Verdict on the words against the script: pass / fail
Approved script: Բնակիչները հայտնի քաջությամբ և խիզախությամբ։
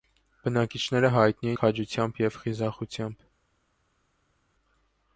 pass